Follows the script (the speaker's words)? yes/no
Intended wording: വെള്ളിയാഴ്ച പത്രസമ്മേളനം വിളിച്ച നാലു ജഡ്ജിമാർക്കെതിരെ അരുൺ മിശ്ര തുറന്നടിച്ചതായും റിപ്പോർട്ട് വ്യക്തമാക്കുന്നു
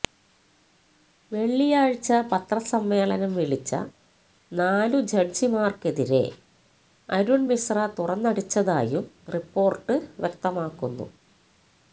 yes